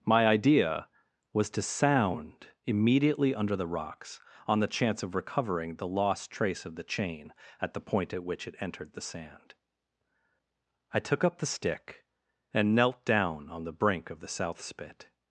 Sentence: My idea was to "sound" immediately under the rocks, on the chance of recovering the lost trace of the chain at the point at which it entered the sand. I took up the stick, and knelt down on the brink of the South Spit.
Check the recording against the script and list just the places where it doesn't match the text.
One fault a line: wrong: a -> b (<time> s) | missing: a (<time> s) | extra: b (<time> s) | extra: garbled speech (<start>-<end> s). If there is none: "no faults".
no faults